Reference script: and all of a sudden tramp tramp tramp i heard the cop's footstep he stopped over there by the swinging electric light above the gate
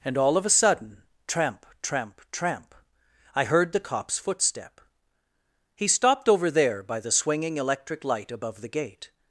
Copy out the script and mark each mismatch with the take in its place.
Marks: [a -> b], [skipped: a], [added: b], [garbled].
and all of a sudden tramp tramp tramp i heard the cop's footstep he stopped over there by the swinging electric light above the gate